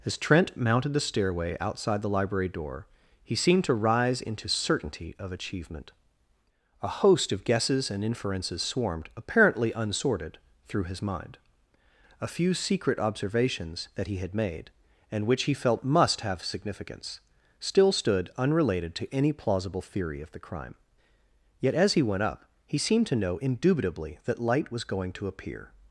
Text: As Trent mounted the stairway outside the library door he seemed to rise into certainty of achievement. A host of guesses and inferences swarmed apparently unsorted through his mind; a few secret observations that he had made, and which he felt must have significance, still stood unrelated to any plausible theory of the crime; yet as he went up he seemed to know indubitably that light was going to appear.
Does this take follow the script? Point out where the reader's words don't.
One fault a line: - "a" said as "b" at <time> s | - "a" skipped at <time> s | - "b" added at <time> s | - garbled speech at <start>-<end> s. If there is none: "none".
none